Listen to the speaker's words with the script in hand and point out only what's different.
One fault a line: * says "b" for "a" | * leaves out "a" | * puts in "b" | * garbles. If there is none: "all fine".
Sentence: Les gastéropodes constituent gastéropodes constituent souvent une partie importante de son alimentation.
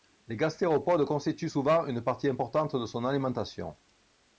* leaves out "gastéropodes constituent"